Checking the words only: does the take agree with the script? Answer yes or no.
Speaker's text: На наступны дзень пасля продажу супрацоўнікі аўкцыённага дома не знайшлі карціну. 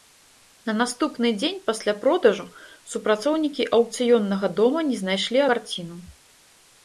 yes